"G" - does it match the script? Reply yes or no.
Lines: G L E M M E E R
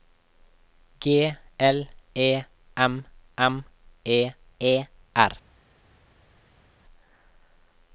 yes